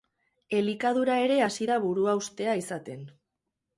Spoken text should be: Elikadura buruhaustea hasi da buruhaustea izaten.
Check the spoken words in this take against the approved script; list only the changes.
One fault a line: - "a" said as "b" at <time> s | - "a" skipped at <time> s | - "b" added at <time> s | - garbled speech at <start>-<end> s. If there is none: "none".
- "buruhaustea" said as "ere" at 1.2 s